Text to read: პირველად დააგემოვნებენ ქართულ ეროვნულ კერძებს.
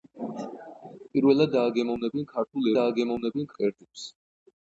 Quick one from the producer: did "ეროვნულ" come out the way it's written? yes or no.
no